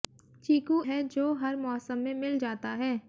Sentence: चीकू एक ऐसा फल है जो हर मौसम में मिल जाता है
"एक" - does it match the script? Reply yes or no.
no